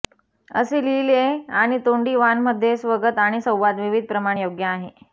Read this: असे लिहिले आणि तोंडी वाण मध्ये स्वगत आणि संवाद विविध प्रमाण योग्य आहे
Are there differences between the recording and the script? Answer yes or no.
no